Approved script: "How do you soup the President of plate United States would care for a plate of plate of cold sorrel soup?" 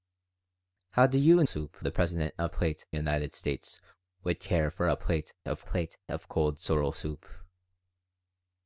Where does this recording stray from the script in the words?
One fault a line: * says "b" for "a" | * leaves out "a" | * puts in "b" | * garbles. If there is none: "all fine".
all fine